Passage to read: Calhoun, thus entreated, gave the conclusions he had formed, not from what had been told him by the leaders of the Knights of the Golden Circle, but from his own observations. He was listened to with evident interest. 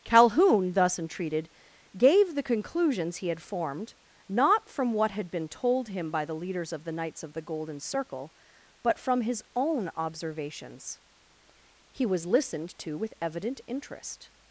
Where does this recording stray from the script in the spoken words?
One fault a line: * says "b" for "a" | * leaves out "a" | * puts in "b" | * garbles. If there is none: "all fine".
all fine